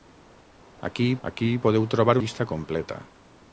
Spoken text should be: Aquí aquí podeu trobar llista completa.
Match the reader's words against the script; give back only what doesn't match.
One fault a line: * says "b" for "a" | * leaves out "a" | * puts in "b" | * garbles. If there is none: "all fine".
all fine